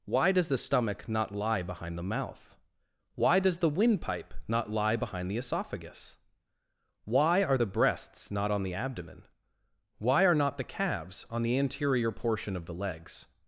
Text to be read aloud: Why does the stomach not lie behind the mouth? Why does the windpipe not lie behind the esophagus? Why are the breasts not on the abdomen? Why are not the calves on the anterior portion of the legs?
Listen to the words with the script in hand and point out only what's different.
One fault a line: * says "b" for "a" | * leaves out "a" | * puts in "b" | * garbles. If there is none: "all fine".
all fine